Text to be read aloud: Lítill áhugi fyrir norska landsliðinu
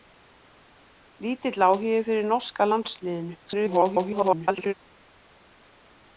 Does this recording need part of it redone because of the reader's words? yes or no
yes